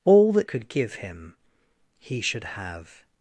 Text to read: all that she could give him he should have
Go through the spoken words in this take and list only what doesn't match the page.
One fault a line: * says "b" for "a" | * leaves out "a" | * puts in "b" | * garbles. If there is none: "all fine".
* leaves out "she"